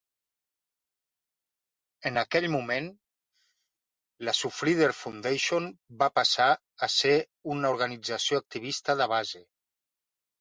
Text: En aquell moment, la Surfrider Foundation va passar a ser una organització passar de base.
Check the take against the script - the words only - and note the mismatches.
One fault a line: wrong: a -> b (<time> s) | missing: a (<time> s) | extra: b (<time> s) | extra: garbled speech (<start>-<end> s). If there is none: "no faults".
wrong: passar -> activista (8.4 s)